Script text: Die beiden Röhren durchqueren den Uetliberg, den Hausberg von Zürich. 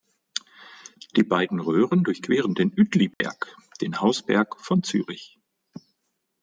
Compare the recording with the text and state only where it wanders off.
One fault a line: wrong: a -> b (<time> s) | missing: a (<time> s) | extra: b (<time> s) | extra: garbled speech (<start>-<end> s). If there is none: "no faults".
no faults